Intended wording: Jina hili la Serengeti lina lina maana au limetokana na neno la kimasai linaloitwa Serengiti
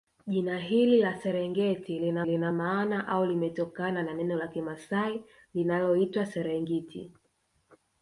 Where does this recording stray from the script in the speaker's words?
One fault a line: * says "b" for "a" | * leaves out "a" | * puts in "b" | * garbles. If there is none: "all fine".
all fine